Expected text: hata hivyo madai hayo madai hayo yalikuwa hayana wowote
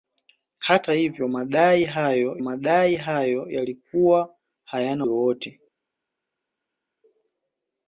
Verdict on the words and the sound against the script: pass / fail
pass